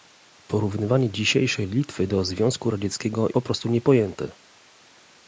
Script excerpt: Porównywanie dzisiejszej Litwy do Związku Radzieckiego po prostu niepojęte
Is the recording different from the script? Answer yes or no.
no